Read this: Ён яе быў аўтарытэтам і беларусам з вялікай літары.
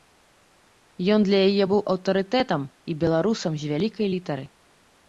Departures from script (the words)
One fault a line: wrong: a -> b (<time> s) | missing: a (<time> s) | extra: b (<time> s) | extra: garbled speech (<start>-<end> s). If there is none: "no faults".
extra: для (1.3 s)